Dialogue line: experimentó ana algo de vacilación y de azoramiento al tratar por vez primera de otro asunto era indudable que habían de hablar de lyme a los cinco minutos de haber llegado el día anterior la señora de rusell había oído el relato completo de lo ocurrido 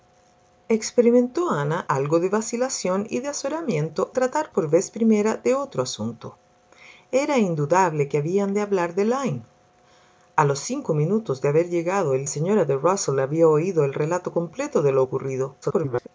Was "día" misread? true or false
true